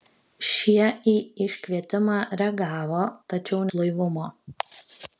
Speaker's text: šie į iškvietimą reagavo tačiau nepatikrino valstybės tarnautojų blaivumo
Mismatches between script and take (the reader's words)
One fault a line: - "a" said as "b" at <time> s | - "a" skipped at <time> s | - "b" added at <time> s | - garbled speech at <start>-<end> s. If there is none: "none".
- "nepatikrino valstybės tarnautojų" skipped at 3.6 s